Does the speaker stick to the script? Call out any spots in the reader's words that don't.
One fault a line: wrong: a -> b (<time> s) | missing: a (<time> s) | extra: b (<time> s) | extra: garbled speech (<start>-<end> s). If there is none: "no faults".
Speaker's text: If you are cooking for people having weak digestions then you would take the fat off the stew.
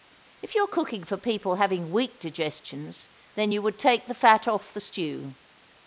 no faults